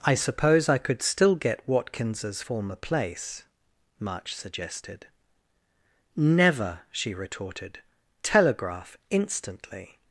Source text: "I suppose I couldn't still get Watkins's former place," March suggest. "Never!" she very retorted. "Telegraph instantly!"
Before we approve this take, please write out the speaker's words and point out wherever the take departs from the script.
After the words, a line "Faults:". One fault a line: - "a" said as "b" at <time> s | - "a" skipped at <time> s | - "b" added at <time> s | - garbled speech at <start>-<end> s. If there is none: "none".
"I suppose I could still get Watkins's former place," March suggested. "Never!" she retorted. "Telegraph instantly!"
Faults:
- "couldn't" said as "could" at 0.8 s
- "suggest" said as "suggested" at 4.4 s
- "very" skipped at 7.1 s